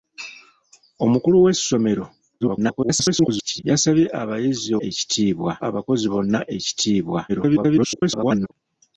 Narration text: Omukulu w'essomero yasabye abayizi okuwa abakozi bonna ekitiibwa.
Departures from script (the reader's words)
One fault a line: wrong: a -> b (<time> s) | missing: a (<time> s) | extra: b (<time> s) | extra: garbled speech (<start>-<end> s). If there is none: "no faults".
extra: garbled speech (2.4-3.6 s)
wrong: okuwa -> ekitiibwa (4.9 s)
extra: garbled speech (7.3-8.5 s)